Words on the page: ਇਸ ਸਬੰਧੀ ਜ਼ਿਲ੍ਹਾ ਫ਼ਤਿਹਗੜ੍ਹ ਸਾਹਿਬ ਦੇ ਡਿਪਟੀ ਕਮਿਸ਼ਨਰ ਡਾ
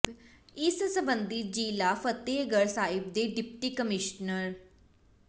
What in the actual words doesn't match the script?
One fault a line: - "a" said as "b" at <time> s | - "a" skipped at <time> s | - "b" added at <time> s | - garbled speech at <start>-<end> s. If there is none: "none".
none